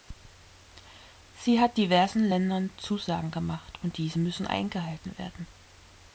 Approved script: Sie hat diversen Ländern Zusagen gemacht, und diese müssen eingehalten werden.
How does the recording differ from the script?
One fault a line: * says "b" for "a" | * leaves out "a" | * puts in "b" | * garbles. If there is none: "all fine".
all fine